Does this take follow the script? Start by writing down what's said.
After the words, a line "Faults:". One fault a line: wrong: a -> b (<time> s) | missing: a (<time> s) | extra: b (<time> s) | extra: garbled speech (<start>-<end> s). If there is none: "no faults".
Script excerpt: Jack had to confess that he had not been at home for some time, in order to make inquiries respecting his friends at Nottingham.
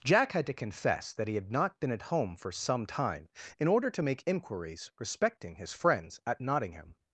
Jack had to confess that he had not been at home for some time, in order to make inquiries respecting his friends at Nottingham.
Faults:
no faults